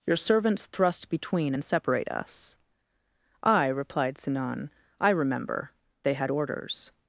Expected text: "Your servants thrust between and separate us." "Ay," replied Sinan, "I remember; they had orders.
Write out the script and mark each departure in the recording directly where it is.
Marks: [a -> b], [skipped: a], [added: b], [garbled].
"Your servants thrust between and separate us." "Ay," replied Sinan, "I remember; they had orders.